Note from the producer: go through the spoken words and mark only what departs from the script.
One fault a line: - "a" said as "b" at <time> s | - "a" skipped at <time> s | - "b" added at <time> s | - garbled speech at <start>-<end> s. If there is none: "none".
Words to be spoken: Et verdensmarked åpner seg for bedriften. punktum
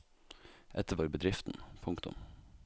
- "verdensmarked åpner seg" skipped at 0.9 s